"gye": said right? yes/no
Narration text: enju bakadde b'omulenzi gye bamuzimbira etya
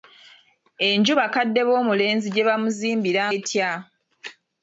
yes